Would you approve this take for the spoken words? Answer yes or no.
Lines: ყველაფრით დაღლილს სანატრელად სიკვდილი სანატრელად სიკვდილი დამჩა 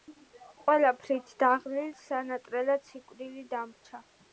no